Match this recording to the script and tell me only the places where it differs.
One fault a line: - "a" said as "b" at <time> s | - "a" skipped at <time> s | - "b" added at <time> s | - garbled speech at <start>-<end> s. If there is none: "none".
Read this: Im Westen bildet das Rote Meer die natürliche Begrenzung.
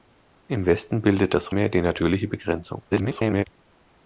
- "Rote" skipped at 1.6 s
- garbled speech at 2.9-3.4 s